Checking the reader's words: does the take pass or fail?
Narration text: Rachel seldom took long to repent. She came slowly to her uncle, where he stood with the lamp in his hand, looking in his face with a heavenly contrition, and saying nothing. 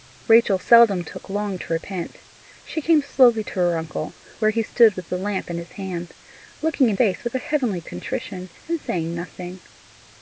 fail